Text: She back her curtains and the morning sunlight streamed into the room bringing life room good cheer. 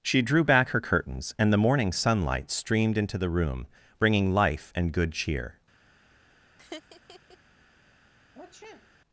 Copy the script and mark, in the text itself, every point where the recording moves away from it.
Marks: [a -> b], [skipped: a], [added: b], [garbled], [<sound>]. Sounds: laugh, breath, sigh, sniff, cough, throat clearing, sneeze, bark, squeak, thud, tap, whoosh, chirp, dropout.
She [added: drew] back her curtains and the morning sunlight streamed into the room bringing life [room -> and] good cheer. [laugh] [sniff]